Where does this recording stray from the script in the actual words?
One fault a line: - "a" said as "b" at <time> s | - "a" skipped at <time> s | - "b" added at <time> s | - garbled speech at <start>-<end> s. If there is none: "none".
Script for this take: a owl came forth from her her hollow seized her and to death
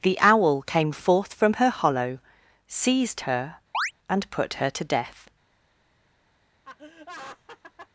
- "a" said as "the" at 0.0 s
- "her" skipped at 1.7 s
- "put her" added at 4.3 s